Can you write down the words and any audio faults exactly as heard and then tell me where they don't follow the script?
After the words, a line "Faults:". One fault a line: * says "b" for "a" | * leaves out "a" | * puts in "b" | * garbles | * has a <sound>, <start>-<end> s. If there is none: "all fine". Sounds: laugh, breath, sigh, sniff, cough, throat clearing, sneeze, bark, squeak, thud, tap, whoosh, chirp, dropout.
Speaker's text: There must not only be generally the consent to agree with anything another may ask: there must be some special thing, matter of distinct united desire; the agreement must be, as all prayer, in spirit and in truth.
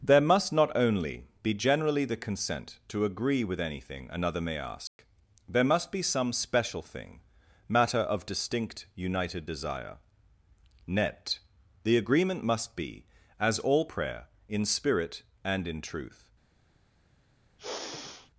There must not only be generally the consent to agree with anything another may ask: there must be some special thing, matter of distinct united desire; net the agreement must be, as all prayer, in spirit and in truth.
Faults:
* has a dropout, 4.9-5.0 s
* puts in "net"
* has a sigh, 17.6-18.3 s